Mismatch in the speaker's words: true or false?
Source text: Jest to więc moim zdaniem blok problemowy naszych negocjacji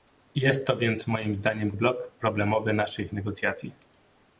false